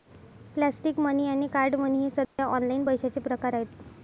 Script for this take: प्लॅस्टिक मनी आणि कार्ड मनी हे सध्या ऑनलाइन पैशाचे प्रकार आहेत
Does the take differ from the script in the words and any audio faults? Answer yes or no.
yes